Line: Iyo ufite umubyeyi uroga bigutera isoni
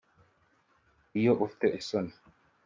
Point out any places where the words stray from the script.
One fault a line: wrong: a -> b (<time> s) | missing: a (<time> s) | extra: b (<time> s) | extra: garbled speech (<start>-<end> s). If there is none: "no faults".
missing: umubyeyi uroga bigutera (1.7 s)